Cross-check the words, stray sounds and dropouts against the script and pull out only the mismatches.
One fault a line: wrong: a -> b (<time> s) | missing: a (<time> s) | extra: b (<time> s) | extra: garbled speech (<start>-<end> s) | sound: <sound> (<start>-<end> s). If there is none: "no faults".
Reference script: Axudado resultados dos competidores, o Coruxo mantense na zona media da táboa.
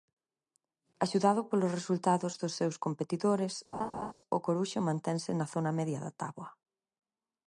extra: polos (1.5 s)
extra: seus (2.6 s)
sound: laugh (3.7-4.1 s)